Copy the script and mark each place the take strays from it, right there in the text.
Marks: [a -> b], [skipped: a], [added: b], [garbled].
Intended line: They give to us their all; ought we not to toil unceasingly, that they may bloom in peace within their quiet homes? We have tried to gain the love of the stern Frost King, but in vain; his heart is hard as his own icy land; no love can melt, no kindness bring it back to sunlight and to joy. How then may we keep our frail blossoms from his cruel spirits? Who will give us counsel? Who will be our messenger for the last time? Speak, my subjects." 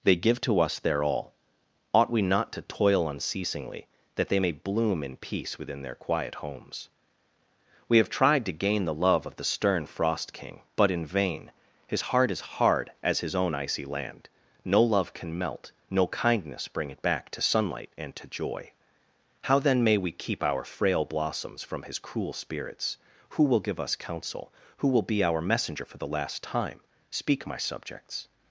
They give to us their all; ought we not to toil unceasingly, that they may bloom in peace within their quiet homes? We have tried to gain the love of the stern Frost King, but in vain; his heart is hard as his own icy land; no love can melt, no kindness bring it back to sunlight and to joy. How then may we keep our frail blossoms from his cruel spirits? Who will give us counsel? Who will be our messenger for the last time? Speak, my subjects."